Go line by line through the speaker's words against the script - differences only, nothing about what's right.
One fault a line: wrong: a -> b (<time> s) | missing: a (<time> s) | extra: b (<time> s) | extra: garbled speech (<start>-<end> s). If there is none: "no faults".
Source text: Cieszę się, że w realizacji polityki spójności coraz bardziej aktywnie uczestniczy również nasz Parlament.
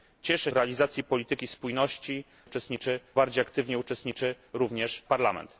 missing: się że w (0.5 s)
wrong: coraz -> uczestniczy (2.4 s)
missing: nasz (5.0 s)